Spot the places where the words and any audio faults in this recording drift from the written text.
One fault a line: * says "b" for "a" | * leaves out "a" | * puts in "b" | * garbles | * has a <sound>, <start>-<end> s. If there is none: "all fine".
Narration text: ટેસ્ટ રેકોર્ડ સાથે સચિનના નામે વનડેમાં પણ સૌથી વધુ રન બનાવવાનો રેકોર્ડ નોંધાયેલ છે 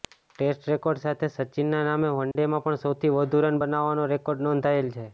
* has a dropout, 2.3-2.4 s